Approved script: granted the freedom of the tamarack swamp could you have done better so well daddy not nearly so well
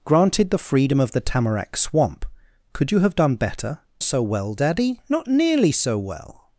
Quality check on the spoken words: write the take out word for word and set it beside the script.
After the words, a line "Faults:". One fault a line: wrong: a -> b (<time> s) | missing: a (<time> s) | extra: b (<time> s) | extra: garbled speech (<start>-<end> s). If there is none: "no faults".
granted the freedom of the tamarack swamp could you have done better so well daddy not nearly so well
Faults:
no faults